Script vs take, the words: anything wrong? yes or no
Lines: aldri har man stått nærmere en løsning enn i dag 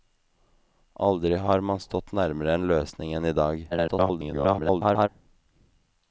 yes